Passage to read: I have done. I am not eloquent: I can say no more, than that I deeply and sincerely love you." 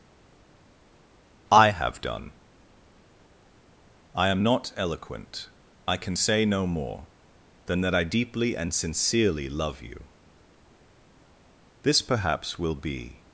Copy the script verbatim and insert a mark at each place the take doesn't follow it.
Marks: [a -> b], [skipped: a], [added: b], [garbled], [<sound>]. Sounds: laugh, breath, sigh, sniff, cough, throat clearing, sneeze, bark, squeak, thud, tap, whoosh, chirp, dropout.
I have done. I am not eloquent: I can say no more, than that I deeply and sincerely love you." [added: This perhaps will be]